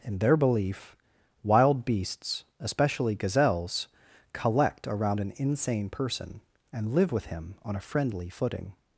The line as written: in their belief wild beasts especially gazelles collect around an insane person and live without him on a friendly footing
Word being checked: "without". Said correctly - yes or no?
no